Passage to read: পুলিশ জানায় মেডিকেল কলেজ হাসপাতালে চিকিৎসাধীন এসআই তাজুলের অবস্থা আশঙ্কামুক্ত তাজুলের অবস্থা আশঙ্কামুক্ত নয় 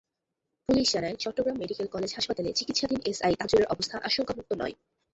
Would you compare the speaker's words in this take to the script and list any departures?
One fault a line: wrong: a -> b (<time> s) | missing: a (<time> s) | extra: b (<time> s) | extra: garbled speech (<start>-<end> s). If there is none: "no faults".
extra: চট্টগ্রাম (1.1 s)
missing: তাজুলের অবস্থা আশঙ্কামুক্ত (4.5 s)